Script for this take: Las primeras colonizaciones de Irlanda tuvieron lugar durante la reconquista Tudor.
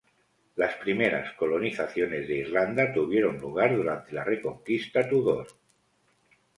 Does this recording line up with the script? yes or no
yes